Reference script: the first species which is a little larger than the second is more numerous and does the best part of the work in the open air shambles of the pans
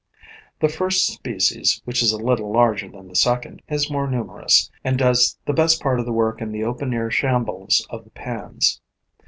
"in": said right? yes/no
yes